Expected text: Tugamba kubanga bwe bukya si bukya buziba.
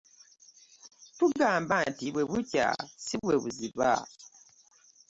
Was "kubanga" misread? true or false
true